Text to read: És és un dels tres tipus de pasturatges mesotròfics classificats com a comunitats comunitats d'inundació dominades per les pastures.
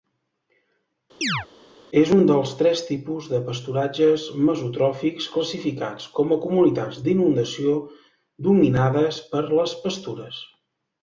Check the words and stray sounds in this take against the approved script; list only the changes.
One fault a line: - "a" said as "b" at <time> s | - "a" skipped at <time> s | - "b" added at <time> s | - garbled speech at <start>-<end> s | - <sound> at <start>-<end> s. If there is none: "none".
- chirp at 1.2-1.5 s
- "és" skipped at 2.1 s
- "comunitats" skipped at 7.0 s